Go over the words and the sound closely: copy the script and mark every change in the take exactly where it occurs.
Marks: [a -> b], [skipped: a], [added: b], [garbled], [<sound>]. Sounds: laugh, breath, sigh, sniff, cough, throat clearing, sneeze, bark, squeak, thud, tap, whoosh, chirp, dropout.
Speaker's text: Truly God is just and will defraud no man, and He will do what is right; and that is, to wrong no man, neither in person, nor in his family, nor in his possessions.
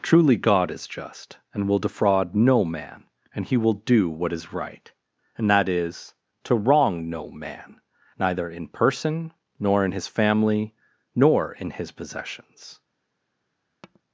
Truly God is just and will defraud no man, and He will do what is right; and that is, to wrong no man, neither in person, nor in his family, nor in his possessions. [tap]